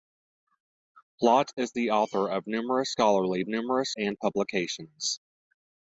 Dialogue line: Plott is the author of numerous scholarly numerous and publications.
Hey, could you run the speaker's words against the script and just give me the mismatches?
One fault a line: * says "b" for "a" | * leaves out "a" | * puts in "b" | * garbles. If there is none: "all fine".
all fine